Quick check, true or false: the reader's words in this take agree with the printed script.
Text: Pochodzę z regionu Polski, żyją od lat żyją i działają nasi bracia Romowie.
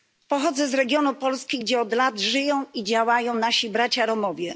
false